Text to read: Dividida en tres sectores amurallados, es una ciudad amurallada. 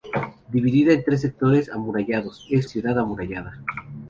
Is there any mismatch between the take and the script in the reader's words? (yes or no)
yes